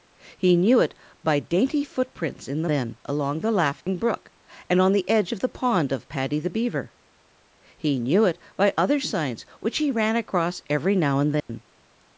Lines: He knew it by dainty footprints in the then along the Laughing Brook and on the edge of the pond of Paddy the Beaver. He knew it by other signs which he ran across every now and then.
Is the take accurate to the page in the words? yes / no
yes